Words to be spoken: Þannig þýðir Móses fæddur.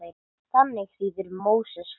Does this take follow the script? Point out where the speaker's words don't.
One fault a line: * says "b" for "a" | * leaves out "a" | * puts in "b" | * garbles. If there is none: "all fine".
all fine